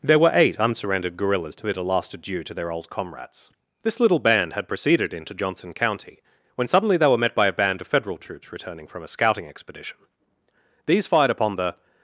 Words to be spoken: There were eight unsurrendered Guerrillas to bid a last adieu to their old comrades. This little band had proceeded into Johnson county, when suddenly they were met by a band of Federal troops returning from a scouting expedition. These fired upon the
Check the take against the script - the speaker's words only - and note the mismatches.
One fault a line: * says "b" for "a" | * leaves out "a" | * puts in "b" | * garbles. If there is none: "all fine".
all fine